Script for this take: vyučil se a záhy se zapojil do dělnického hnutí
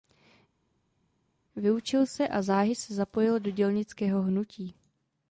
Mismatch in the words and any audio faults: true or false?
false